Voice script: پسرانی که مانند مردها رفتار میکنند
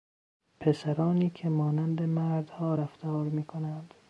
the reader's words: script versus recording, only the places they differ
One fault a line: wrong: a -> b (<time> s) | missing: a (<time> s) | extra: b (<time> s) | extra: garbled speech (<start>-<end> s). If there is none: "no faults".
no faults